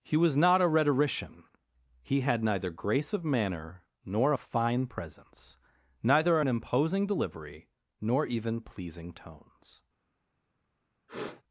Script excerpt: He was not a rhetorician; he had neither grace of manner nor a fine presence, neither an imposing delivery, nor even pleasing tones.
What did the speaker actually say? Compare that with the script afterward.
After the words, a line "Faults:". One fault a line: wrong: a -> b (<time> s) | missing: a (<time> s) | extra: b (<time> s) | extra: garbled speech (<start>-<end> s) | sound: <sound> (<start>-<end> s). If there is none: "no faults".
He was not a rhetorician; he had neither grace of manner nor a fine presence, neither an imposing delivery, nor even pleasing tones.
Faults:
sound: sniff (11.1-11.4 s)